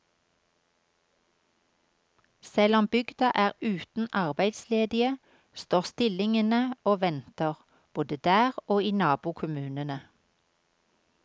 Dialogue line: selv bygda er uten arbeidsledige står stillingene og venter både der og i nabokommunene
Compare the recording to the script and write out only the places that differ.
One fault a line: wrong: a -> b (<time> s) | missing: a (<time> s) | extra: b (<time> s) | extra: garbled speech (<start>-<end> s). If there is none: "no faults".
extra: om (2.8 s)